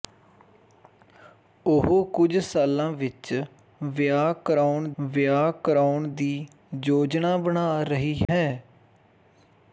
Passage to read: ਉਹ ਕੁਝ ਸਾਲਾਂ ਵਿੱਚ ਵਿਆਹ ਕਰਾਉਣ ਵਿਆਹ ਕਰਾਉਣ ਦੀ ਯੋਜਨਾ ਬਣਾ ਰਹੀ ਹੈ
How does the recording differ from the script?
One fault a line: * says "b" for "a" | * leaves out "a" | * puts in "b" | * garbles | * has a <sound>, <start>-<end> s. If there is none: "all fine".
* has a dropout, 8.3-8.3 s